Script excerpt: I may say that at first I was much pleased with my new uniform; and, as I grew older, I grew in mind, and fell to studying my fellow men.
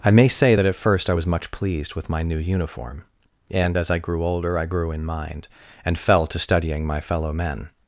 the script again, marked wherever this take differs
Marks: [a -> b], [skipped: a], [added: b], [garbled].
I may say that at first I was much pleased with my new uniform; and, as I grew older, I grew in mind, and fell to studying my fellow men.